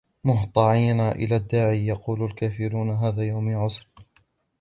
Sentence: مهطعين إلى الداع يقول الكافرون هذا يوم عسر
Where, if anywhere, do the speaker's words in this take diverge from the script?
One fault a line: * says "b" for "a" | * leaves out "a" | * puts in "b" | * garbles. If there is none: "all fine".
all fine